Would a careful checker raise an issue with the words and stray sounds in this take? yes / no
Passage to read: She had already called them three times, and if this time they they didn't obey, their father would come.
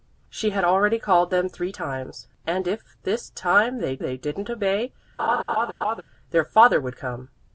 yes